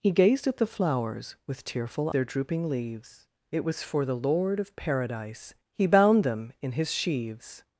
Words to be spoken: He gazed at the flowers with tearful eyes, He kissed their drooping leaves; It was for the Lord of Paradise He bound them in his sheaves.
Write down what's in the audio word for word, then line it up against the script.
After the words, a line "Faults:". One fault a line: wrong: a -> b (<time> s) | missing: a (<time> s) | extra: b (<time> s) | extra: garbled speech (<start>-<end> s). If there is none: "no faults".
He gazed at the flowers with tearful their drooping leaves; It was for the Lord of Paradise He bound them in his sheaves.
Faults:
missing: eyes He kissed (2.1 s)